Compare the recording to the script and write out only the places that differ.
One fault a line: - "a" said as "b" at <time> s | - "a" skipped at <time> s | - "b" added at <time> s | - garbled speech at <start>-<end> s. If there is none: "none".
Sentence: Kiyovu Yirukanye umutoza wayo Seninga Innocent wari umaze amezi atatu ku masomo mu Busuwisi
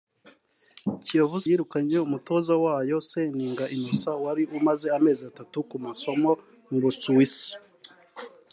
none